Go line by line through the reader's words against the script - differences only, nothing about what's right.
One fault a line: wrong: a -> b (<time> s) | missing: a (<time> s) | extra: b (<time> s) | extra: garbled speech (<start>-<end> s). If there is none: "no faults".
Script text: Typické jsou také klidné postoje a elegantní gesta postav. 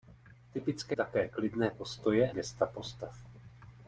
missing: jsou (0.9 s)
missing: a elegantní (2.3 s)